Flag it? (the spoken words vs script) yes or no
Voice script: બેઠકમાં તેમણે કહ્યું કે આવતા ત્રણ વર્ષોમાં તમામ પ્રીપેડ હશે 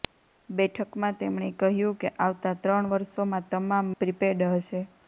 no